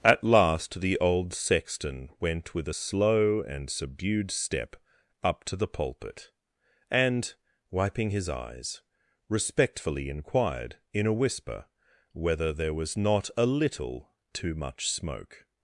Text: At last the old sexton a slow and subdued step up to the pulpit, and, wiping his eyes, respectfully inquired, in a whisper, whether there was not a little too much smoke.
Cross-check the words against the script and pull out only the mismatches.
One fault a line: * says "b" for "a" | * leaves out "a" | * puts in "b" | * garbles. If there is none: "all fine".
* puts in "went with"